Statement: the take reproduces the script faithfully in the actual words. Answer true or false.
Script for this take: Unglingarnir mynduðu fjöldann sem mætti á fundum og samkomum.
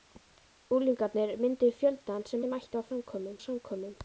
false